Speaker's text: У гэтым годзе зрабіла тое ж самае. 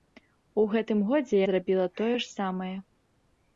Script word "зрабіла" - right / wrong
right